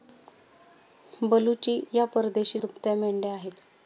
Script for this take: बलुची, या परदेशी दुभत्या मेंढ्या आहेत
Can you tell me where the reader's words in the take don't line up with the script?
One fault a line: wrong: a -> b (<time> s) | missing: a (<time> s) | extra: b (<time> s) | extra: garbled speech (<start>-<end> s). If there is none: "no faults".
no faults